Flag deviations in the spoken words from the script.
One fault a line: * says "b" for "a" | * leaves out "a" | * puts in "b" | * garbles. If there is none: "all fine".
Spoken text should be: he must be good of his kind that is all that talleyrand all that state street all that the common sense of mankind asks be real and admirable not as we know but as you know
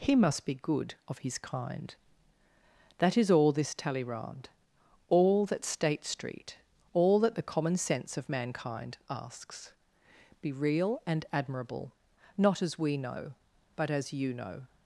* says "this" for "that"